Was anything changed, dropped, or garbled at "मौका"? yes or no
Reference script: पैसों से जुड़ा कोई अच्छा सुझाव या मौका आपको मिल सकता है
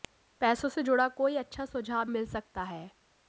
yes